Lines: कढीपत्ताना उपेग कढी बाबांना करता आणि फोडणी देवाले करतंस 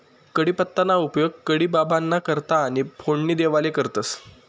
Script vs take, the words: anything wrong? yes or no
no